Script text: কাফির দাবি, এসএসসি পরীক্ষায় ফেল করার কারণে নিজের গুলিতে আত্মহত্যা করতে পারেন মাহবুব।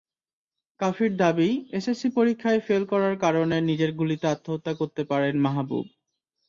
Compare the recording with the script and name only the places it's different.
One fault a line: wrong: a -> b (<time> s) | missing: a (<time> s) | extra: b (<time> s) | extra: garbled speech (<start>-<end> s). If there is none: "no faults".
no faults